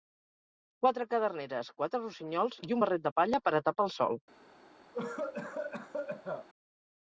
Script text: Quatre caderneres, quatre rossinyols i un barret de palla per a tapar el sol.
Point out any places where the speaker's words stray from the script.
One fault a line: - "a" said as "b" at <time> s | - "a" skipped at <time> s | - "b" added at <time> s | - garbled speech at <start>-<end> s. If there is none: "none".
none